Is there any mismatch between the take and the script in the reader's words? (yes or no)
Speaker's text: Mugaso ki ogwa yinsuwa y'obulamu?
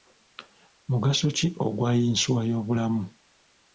no